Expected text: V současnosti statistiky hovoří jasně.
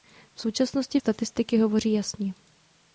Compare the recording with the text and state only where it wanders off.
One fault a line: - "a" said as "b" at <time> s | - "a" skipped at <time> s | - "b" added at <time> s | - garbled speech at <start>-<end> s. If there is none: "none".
none